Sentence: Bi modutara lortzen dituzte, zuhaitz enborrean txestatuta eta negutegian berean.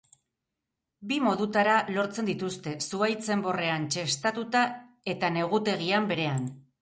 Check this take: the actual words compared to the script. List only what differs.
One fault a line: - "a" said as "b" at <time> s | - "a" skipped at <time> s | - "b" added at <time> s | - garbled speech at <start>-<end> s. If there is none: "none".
none